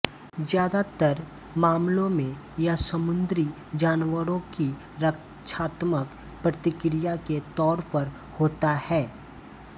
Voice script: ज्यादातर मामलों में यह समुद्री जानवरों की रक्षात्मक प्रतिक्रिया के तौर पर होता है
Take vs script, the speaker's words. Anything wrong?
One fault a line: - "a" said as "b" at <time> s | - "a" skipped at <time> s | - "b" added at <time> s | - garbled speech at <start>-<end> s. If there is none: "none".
none